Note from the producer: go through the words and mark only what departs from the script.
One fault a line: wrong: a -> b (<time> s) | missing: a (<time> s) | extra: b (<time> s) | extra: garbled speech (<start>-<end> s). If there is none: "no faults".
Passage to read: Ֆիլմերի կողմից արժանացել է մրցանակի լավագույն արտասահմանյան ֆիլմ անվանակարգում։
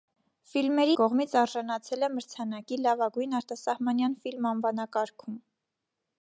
no faults